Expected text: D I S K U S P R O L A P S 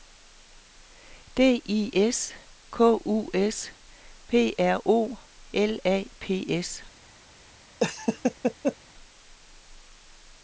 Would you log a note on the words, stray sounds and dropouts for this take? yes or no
yes